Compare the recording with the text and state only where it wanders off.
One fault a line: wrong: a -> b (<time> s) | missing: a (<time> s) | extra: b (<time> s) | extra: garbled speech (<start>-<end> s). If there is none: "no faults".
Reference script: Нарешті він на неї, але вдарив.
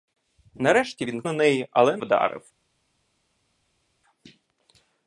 no faults